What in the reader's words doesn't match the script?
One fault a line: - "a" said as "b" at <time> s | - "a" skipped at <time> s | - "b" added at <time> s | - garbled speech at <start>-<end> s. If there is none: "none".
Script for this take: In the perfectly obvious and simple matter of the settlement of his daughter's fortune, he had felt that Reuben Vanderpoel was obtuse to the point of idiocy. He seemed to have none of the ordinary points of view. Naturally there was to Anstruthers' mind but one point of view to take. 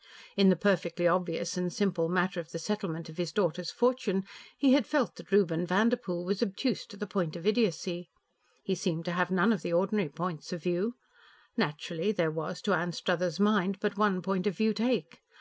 - "to" skipped at 14.7 s